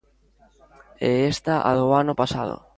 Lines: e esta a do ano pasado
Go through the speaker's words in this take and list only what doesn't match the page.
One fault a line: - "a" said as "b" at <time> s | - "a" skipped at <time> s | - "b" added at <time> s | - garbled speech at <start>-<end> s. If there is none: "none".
none